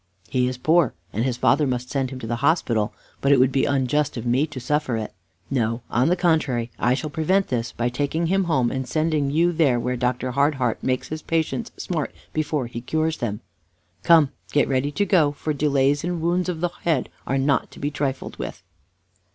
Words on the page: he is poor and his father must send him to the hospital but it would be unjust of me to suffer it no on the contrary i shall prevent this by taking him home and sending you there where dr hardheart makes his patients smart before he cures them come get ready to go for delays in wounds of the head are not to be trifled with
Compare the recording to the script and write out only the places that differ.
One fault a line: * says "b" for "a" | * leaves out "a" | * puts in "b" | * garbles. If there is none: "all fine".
all fine